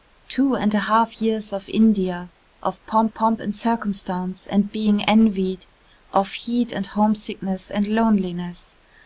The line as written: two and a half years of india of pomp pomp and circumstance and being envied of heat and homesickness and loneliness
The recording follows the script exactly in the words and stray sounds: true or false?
true